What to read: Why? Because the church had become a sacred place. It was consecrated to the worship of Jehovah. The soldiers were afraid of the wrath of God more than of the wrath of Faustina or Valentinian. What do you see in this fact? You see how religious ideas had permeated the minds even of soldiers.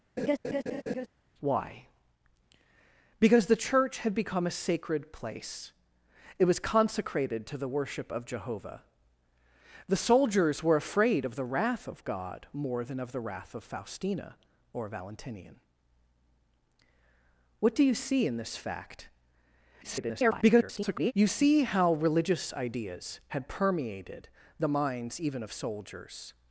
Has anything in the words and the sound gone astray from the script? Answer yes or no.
yes